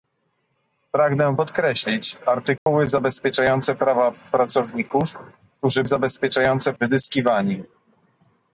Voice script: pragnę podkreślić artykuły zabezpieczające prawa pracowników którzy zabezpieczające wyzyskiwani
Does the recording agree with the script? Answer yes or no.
yes